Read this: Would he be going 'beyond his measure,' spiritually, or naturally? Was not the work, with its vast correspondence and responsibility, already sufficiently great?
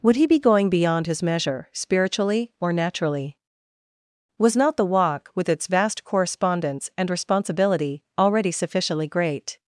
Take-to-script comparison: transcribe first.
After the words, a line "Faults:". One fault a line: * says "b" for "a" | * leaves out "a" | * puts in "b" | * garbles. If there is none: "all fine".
Would he be going 'beyond his measure,' spiritually, or naturally? Was not the walk, with its vast correspondence and responsibility, already sufficiently great?
Faults:
* says "walk" for "work"